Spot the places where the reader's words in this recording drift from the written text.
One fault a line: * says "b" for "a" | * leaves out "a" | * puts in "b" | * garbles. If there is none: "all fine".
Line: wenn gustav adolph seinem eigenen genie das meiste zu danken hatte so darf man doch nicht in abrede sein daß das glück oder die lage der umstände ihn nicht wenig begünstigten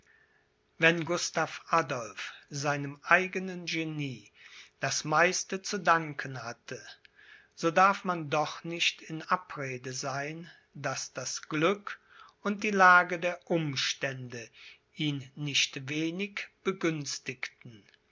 * says "und" for "oder"